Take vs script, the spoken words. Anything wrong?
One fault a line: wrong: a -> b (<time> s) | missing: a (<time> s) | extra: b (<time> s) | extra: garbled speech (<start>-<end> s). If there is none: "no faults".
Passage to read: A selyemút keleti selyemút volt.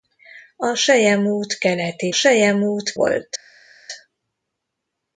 no faults